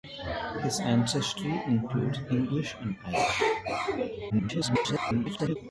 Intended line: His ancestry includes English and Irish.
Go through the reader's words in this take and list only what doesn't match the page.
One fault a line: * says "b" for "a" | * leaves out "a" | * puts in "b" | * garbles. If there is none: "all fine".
* garbles